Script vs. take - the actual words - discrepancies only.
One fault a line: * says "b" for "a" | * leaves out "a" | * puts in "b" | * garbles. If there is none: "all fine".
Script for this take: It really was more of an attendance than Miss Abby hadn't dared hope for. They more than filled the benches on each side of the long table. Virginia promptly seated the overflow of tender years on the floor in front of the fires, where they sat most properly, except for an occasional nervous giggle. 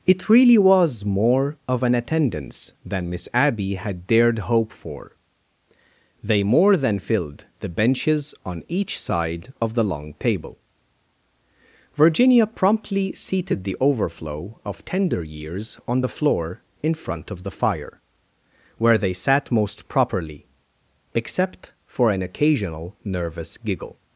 * says "had" for "hadn't"
* says "fire" for "fires"